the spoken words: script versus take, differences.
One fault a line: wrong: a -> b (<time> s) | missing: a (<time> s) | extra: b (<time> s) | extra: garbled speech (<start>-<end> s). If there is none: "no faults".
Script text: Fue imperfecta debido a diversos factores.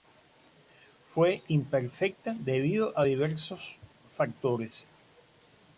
no faults